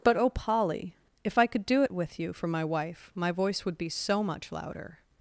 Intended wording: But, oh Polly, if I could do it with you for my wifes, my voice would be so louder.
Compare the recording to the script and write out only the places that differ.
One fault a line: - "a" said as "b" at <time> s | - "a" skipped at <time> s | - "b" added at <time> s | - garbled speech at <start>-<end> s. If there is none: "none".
- "wifes" said as "wife" at 2.6 s
- "much" added at 4.2 s